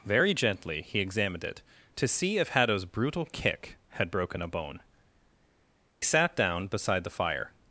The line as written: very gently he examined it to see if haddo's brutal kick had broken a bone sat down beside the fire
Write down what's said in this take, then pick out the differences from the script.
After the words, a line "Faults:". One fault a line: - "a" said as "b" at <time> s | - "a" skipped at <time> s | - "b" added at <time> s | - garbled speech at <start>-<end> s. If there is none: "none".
very gently he examined it to see if haddo's brutal kick had broken a bone sat down beside the fire
Faults:
none